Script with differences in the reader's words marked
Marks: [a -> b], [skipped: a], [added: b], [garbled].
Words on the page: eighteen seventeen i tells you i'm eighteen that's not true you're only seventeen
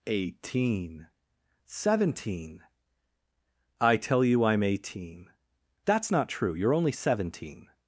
eighteen seventeen i [tells -> tell] you i'm eighteen that's not true you're only seventeen